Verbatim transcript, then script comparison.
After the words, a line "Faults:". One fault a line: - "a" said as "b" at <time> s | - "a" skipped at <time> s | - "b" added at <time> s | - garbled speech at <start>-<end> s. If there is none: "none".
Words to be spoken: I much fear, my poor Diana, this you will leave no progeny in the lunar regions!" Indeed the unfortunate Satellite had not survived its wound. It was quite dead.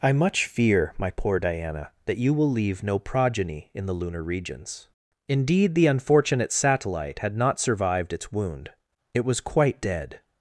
I much fear, my poor Diana, that you will leave no progeny in the lunar regions!" Indeed the unfortunate Satellite had not survived its wound. It was quite dead.
Faults:
- "this" said as "that" at 2.1 s